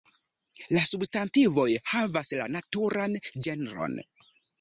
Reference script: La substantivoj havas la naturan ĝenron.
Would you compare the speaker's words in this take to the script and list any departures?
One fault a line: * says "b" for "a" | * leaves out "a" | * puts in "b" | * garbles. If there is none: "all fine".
all fine